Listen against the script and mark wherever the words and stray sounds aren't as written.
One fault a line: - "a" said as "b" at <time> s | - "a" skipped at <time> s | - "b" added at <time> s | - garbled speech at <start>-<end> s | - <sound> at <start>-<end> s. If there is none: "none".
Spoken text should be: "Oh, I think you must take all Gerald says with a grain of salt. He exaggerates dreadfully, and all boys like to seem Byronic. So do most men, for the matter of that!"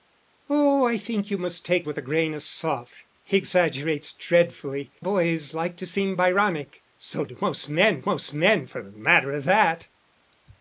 - "all Gerald says" skipped at 1.9 s
- "and all" skipped at 4.9 s
- "most men" added at 8.0 s